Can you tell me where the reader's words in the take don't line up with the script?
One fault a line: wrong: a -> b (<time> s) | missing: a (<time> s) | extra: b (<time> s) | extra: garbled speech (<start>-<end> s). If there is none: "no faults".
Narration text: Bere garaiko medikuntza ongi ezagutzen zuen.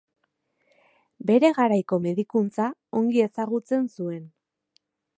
no faults